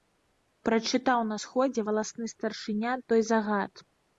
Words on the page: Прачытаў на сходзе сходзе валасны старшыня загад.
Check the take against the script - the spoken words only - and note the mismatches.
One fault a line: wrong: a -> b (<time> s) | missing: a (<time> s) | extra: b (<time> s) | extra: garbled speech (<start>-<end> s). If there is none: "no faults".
missing: сходзе (1.8 s)
extra: той (3.1 s)